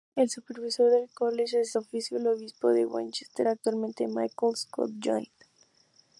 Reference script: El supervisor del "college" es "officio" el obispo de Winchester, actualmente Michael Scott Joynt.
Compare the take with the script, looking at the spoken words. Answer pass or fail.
pass